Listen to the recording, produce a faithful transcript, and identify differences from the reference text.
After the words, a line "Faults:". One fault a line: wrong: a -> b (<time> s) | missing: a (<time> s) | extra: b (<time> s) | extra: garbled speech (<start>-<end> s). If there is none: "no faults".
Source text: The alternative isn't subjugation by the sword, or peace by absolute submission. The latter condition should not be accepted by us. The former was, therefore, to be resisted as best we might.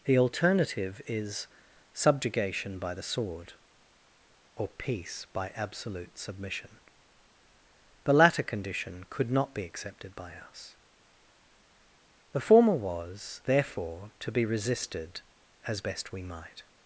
The alternative is subjugation by the sword, or peace by absolute submission. The latter condition could not be accepted by us. The former was, therefore, to be resisted as best we might.
Faults:
wrong: isn't -> is (1.1 s)
wrong: should -> could (9.1 s)